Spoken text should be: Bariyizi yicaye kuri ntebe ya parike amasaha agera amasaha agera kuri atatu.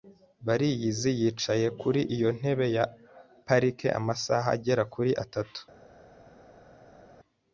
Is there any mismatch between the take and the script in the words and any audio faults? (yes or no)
yes